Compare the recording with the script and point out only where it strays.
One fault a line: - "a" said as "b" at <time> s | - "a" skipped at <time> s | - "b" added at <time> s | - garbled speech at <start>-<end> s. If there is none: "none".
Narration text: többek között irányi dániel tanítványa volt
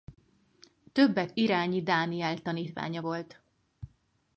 - "között" skipped at 1.3 s